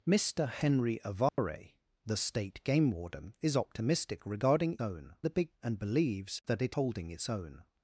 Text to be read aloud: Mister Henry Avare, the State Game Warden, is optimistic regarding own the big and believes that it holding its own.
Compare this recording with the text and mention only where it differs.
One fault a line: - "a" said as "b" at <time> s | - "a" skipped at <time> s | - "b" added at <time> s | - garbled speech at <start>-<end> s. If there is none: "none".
none